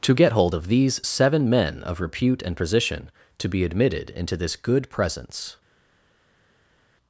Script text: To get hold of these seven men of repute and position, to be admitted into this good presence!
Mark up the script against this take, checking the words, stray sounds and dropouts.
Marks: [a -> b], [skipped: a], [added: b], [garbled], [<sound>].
To get hold of these seven men of repute and position, to be admitted into this good presence!